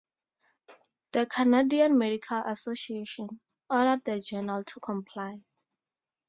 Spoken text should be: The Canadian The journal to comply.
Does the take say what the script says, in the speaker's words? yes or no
no